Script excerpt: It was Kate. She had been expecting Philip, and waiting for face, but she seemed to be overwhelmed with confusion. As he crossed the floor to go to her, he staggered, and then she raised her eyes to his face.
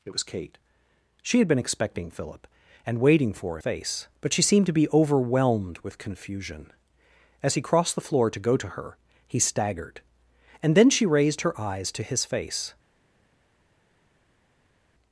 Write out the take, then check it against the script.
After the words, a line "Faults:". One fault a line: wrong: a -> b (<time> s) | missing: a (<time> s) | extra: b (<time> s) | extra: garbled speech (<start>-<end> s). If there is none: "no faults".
It was Kate. She had been expecting Philip, and waiting for face, but she seemed to be overwhelmed with confusion. As he crossed the floor to go to her, he staggered, and then she raised her eyes to his face.
Faults:
no faults